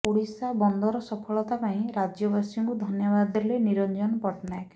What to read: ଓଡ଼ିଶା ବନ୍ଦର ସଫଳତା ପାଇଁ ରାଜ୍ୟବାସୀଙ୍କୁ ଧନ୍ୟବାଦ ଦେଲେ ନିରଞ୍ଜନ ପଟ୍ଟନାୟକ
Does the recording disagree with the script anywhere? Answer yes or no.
no